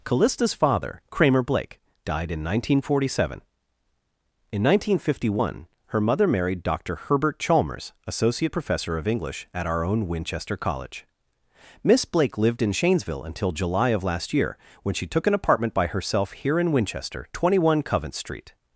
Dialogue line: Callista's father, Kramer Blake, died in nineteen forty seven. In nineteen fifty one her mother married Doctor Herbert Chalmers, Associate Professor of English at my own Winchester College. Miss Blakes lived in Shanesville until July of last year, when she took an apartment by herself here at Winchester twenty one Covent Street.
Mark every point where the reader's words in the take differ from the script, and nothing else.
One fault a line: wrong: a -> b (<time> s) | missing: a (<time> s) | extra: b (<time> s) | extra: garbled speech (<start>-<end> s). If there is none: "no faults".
wrong: my -> our (9.7 s)
wrong: Blakes -> Blake (12.0 s)
wrong: at -> in (16.6 s)